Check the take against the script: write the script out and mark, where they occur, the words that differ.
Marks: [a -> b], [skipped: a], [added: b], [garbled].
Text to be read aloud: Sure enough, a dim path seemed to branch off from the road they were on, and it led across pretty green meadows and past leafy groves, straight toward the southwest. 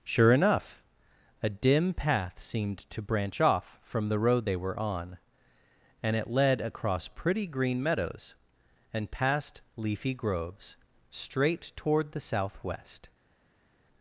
Sure enough, a dim path seemed to branch off from the road they were on, and it led across pretty green meadows and past leafy groves, straight toward the southwest.